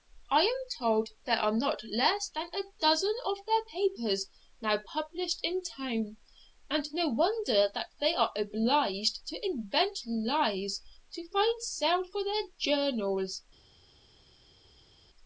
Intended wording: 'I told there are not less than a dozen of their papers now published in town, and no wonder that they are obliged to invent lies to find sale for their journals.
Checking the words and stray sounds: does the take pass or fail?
fail